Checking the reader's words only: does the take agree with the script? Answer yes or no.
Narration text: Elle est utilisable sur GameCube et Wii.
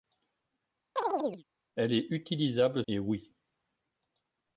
no